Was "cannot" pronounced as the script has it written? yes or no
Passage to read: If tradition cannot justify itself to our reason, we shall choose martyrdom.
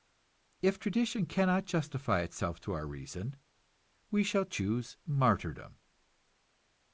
yes